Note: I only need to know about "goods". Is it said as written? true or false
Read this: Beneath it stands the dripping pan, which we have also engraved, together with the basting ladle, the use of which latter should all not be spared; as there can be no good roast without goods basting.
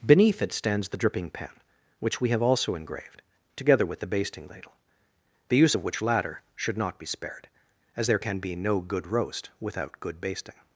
false